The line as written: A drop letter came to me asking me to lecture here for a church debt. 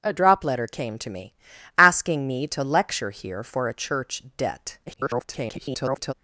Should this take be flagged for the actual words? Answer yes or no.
yes